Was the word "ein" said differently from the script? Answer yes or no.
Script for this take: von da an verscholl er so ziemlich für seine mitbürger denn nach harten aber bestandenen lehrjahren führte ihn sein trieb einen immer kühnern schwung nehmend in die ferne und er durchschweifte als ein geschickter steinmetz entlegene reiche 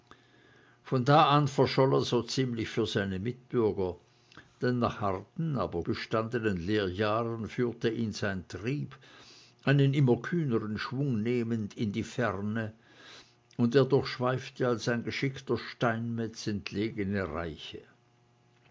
no